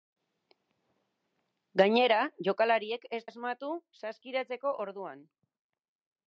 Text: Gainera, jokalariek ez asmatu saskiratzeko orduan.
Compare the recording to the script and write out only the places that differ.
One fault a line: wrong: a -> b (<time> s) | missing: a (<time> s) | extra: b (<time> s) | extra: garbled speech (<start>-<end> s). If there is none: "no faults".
no faults